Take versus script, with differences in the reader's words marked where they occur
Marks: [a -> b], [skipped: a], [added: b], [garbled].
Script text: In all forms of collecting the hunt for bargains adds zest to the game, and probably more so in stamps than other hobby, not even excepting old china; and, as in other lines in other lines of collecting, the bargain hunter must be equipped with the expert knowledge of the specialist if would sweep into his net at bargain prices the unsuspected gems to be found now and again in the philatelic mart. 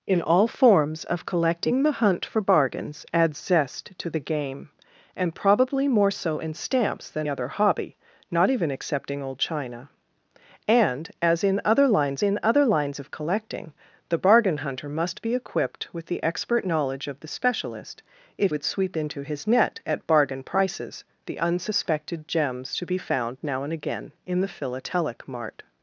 In all forms of collecting the hunt for bargains adds zest to the game, and probably more so in stamps than other hobby, not even excepting old china; and, as in other lines in other lines of collecting, the bargain hunter must be equipped with the expert knowledge of the specialist if would sweep into his net at bargain prices the unsuspected gems to be found now and again in the philatelic mart.